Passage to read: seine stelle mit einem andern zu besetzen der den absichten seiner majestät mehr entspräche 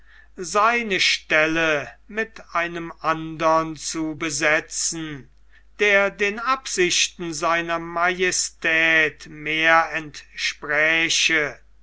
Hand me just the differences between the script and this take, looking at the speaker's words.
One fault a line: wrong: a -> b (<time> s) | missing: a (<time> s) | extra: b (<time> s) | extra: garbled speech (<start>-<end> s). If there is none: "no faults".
no faults